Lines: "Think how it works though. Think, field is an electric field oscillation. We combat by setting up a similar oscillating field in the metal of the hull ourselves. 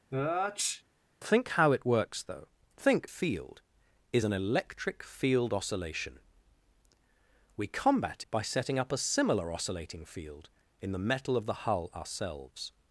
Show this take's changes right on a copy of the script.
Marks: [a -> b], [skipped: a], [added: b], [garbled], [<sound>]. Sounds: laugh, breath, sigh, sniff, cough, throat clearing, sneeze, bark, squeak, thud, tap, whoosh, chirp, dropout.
[sneeze] "Think how it works though. Think, field is an electric field oscillation. We combat by setting up a similar oscillating field in the metal of the hull ourselves.